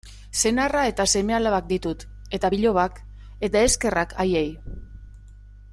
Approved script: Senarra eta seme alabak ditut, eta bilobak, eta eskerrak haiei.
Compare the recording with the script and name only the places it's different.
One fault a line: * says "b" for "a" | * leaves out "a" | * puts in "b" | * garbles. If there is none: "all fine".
all fine